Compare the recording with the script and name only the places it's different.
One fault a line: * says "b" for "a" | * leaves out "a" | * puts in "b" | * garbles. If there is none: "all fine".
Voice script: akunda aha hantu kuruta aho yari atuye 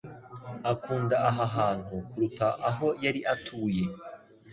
all fine